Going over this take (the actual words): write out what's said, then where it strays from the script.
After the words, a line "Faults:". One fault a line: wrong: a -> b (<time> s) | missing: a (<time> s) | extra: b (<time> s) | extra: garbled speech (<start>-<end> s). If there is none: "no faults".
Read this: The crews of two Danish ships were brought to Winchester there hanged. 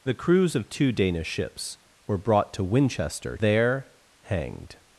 The crews of two Danish ships were brought to Winchester there hanged.
Faults:
no faults